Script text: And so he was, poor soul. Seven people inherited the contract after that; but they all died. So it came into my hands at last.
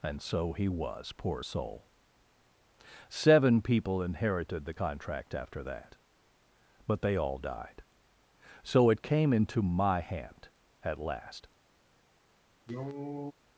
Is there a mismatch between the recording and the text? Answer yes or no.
yes